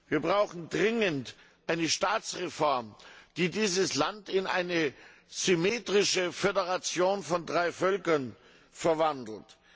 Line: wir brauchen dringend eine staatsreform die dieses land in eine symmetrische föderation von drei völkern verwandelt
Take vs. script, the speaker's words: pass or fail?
pass